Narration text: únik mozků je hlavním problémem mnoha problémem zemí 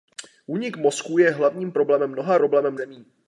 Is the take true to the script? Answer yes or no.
yes